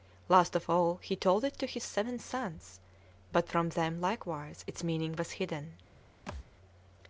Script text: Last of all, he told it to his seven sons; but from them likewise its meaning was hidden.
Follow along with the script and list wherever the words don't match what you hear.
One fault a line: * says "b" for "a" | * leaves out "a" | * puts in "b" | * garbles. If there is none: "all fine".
all fine